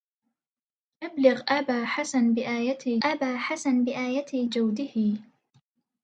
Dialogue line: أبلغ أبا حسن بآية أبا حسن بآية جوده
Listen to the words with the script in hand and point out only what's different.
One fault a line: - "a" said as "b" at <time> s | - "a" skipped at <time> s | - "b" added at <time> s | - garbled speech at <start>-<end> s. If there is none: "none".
none